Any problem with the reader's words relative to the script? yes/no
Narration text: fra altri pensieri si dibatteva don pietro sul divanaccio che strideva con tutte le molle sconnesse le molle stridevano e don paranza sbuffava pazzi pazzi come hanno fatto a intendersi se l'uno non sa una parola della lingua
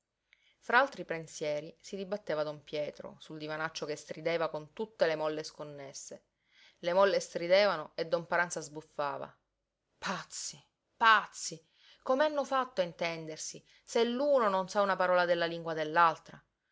no